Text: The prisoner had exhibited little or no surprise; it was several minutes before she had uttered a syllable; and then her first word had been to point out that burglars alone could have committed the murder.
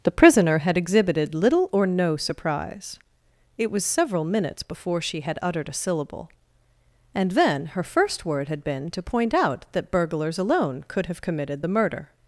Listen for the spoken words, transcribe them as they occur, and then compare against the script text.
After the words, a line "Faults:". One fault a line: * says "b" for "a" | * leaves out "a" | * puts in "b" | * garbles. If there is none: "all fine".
The prisoner had exhibited little or no surprise; it was several minutes before she had uttered a syllable; and then her first word had been to point out that burglars alone could have committed the murder.
Faults:
all fine